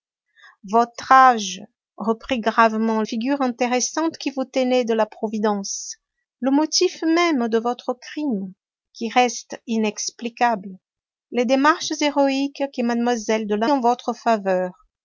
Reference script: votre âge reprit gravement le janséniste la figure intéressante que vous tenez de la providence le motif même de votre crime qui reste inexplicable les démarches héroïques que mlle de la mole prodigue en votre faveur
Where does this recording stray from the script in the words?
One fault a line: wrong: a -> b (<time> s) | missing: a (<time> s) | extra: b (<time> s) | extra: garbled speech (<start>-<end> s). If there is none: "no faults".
missing: le janséniste la (3.0 s)
missing: mole prodigue (13.7 s)